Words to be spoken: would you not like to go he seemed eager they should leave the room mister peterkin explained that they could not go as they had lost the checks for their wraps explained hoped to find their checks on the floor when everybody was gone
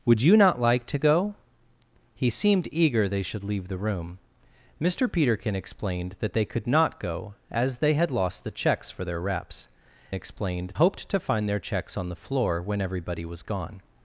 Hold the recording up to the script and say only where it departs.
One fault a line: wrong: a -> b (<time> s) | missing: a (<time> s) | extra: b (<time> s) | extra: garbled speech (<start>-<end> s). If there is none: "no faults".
no faults